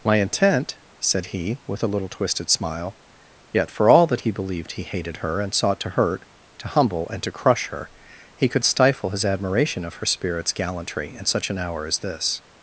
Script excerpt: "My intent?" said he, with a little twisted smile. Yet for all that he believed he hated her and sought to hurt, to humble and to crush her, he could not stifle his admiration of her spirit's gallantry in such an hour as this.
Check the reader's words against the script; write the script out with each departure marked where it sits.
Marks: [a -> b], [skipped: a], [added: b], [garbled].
"My intent?" said he, with a little twisted smile. Yet for all that he believed he hated her and sought to hurt, to humble and to crush her, he could [skipped: not] stifle his admiration of her spirit's gallantry in such an hour as this.